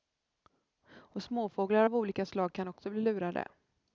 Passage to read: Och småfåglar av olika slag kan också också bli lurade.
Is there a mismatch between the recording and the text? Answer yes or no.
yes